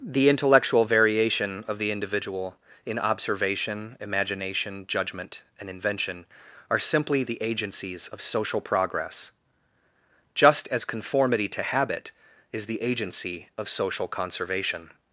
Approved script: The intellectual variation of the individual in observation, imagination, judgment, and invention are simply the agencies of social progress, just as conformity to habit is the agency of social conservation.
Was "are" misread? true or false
false